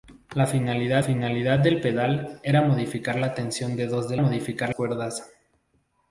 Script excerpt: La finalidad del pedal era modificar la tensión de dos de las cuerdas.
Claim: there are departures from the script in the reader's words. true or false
true